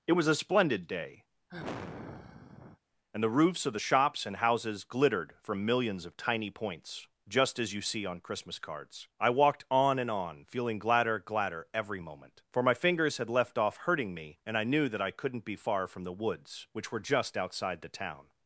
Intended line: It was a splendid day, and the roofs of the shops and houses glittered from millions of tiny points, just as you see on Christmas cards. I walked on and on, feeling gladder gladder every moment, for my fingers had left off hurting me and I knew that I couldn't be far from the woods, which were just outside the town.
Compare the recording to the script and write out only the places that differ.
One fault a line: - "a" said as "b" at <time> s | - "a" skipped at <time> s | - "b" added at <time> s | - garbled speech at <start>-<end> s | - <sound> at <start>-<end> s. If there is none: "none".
- sigh at 1.5-2.8 s